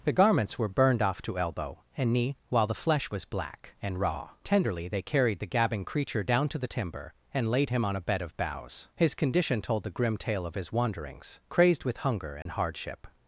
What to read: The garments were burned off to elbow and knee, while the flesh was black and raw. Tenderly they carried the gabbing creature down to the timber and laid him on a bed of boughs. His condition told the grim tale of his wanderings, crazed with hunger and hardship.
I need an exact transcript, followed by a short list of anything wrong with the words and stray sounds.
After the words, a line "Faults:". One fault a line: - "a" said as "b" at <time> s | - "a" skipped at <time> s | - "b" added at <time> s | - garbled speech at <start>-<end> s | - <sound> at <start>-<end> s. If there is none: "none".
The garments were burned off to elbow and knee, while the flesh was black and raw. Tenderly they carried the gabbing creature down to the timber and laid him on a bed of boughs. His condition told the grim tale of his wanderings, crazed with hunger and hardship.
Faults:
- dropout at 12.4-12.5 s